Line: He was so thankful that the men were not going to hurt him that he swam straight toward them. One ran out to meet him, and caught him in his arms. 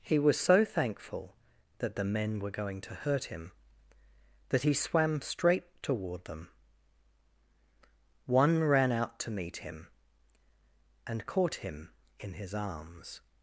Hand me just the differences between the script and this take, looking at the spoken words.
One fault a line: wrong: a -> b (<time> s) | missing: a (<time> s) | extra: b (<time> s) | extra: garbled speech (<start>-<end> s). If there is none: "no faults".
missing: not (2.5 s)